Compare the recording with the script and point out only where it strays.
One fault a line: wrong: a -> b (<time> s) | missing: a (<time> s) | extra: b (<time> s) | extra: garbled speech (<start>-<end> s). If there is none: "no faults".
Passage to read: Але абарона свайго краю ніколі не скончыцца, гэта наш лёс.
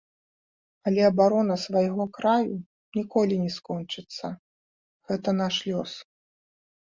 no faults